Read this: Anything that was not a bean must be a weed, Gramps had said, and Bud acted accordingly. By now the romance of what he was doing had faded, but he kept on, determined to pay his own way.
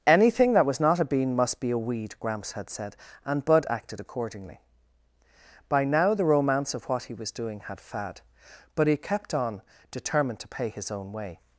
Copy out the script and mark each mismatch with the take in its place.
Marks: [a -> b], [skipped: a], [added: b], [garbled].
Anything that was not a bean must be a weed, Gramps had said, and Bud acted accordingly. By now the romance of what he was doing had [faded, -> fad] but he kept on, determined to pay his own way.